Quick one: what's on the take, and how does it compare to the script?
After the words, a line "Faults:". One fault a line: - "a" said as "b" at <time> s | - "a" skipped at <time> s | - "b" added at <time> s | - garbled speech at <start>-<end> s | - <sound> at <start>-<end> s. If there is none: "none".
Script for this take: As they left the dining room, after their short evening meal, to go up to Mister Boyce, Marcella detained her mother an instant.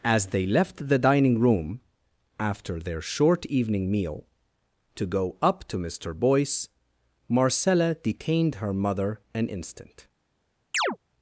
As they left the dining room, after their short evening meal, to go up to Mister Boyce, Marcella detained her mother an instant.
Faults:
- chirp at 10.7-11.0 s